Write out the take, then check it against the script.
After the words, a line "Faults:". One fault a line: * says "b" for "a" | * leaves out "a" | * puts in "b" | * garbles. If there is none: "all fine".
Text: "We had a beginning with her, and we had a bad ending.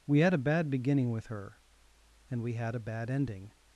"We had a bad beginning with her, and we had a bad ending.
Faults:
* puts in "bad"